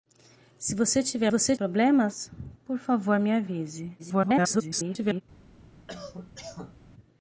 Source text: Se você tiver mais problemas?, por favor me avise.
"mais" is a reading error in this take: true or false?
true